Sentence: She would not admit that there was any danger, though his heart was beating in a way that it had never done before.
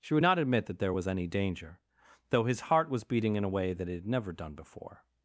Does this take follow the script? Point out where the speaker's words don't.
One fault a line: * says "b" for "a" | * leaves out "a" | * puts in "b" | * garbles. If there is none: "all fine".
all fine